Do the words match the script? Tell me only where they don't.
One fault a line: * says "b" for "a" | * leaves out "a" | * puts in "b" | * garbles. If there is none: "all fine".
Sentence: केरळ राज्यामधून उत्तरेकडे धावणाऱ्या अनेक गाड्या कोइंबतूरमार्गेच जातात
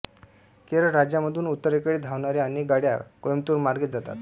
all fine